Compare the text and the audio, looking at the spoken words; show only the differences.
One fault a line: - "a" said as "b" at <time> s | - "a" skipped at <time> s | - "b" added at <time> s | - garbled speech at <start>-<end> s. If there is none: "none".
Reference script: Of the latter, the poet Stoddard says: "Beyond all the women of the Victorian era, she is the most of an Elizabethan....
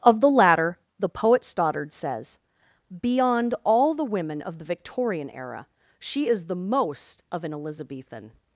none